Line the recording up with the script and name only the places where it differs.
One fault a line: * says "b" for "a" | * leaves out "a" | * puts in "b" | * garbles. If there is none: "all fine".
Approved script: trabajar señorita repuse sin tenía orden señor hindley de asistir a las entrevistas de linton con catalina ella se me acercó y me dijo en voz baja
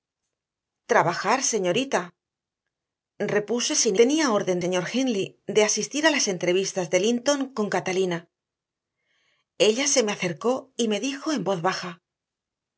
all fine